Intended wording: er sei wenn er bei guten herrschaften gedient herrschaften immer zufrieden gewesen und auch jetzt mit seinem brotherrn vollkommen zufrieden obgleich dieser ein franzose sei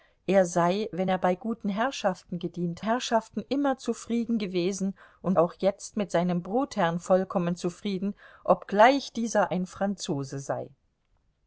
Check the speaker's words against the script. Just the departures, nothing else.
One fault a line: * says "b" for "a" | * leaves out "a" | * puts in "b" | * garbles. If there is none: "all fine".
all fine